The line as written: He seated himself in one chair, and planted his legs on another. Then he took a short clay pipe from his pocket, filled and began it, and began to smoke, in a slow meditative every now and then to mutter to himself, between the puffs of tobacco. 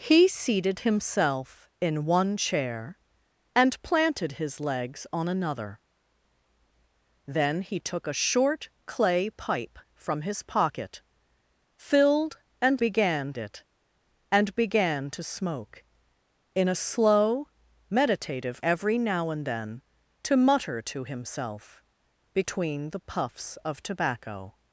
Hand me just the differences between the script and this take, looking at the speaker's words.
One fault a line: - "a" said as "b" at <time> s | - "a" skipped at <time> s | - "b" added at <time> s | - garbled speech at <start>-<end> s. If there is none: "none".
none